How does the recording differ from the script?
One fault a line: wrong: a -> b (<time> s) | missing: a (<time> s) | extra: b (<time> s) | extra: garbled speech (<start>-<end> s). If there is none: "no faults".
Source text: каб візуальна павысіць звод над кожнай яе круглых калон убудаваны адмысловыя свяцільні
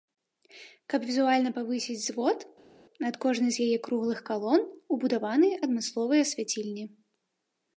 extra: з (3.6 s)